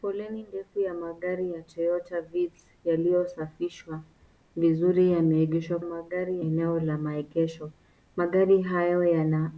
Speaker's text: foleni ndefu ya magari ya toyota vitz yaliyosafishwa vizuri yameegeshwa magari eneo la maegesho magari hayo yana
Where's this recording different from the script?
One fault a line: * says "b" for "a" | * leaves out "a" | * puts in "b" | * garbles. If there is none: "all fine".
all fine